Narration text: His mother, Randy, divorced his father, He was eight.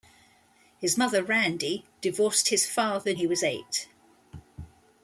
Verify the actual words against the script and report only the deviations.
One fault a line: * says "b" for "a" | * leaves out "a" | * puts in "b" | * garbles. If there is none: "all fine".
all fine